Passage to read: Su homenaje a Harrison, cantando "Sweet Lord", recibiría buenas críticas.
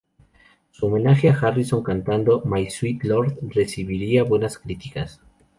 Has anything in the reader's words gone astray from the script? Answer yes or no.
yes